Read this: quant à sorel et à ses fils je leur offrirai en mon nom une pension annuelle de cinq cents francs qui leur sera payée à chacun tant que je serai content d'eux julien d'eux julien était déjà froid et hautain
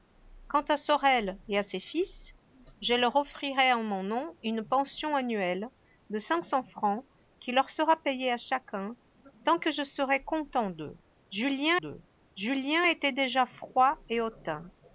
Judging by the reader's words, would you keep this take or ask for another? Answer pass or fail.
pass